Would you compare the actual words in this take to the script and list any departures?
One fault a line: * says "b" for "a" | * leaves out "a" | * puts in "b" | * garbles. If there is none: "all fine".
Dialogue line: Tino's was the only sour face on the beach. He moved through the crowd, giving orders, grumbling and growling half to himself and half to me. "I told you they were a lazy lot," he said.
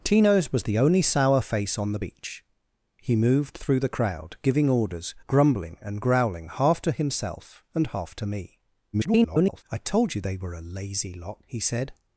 * garbles